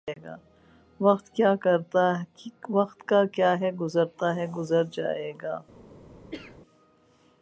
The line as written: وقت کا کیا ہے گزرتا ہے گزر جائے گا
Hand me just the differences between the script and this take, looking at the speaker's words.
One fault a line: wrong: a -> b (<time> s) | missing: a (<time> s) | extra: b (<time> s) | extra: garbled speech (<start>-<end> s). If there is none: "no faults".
no faults